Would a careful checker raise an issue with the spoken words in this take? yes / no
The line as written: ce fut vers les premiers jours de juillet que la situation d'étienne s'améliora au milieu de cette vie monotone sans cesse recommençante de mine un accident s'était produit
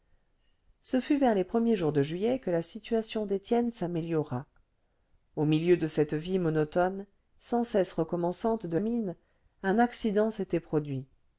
no